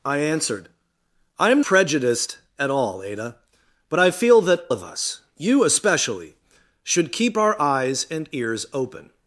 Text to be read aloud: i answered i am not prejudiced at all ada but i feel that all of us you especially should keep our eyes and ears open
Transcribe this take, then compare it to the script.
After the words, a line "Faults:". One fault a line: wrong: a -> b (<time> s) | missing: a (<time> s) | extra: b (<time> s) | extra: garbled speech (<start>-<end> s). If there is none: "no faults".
i answered i am prejudiced at all ada but i feel that of us you especially should keep our eyes and ears open
Faults:
missing: not (1.6 s)
missing: all (4.6 s)